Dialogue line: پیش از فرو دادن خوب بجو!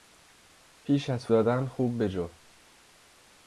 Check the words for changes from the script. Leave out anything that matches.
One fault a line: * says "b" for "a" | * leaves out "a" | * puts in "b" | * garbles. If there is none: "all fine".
* leaves out "فرو"